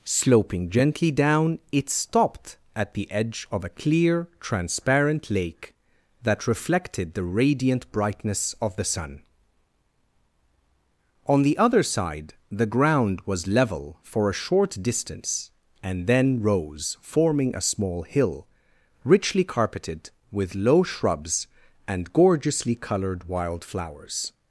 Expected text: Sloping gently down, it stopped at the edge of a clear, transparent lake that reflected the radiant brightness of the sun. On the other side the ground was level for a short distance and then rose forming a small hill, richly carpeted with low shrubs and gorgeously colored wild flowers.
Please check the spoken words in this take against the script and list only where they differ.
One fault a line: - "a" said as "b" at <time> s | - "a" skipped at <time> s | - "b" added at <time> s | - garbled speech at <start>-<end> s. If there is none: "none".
none